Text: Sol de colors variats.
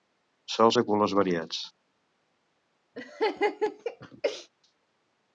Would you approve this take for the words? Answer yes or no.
yes